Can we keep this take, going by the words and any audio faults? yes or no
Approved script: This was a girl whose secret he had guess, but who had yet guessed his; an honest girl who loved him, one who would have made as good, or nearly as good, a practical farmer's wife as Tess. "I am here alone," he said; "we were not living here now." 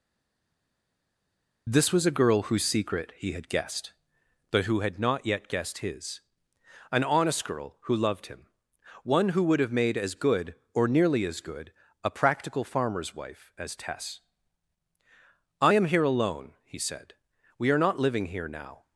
no